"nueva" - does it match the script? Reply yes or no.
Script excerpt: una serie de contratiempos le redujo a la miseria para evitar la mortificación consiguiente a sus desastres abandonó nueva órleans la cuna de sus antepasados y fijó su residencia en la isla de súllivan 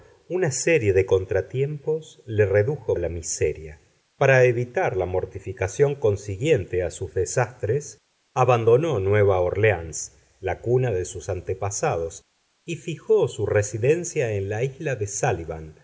yes